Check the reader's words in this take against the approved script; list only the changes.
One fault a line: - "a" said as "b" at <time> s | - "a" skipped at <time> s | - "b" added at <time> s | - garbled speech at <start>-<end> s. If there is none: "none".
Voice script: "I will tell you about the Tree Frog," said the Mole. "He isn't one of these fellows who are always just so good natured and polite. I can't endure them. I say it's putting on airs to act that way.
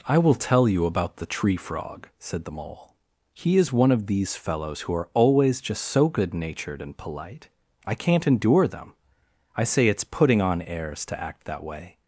- "isn't" said as "is" at 3.6 s